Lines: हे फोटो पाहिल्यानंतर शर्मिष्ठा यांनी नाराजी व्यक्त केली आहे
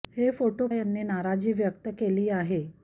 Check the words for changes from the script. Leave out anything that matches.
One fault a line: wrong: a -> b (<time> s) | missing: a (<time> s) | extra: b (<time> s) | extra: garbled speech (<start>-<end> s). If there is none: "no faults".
missing: पाहिल्यानंतर शर्मिष्ठा (0.7 s)